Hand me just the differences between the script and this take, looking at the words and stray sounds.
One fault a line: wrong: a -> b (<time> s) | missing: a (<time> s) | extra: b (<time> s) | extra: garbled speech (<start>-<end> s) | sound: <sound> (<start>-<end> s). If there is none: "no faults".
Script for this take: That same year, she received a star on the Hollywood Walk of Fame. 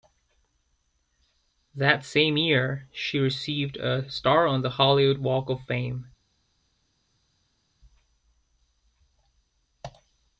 no faults